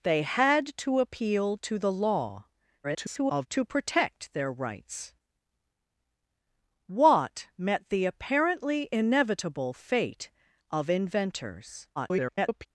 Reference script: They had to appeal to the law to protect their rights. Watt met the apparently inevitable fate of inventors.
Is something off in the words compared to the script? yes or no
yes